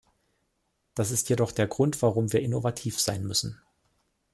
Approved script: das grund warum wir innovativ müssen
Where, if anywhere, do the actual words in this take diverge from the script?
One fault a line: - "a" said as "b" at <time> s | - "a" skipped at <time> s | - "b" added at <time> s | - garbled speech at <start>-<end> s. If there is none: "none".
- "ist jedoch der" added at 1.1 s
- "sein" added at 3.0 s